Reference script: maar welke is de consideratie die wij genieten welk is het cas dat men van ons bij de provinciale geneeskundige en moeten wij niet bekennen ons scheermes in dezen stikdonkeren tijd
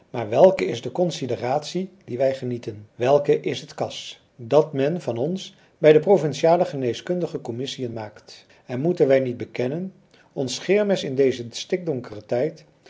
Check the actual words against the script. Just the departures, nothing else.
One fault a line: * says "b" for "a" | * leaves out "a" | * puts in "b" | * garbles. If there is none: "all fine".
* puts in "commissiën maakt"